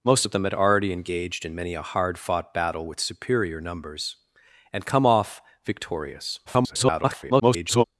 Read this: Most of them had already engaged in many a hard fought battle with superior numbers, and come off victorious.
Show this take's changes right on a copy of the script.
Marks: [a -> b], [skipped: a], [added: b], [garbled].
Most of them had already engaged in many a hard fought battle with superior numbers, and come off victorious. [garbled]